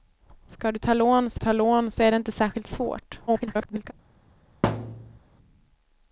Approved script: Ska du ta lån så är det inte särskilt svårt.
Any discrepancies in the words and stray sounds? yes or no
yes